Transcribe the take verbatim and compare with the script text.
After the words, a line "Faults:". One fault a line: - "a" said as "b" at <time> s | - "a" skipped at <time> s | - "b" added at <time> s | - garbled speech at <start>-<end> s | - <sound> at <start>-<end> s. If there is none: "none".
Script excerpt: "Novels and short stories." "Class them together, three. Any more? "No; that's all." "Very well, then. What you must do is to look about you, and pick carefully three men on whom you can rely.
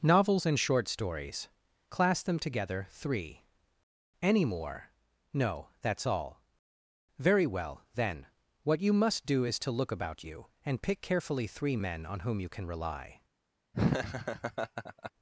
"Novels and short stories." "Class them together, three. Any more? "No; that's all." "Very well, then. What you must do is to look about you, and pick carefully three men on whom you can rely.
Faults:
- laugh at 13.7-15.1 s